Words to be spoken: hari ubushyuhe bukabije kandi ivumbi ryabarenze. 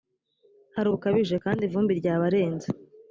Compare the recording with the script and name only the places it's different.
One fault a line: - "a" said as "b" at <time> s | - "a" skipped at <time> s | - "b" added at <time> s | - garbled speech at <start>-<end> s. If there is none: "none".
- "ubushyuhe" skipped at 0.9 s